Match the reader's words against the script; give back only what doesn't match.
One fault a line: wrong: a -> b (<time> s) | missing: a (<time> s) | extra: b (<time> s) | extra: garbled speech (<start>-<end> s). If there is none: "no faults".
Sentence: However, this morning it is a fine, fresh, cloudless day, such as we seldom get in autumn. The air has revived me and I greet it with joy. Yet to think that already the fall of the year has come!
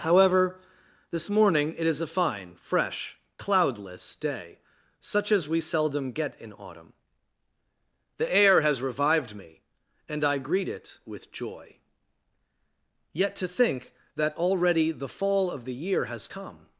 no faults